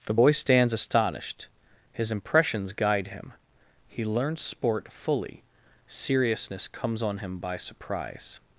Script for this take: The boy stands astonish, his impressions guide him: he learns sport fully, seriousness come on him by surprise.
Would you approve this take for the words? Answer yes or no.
no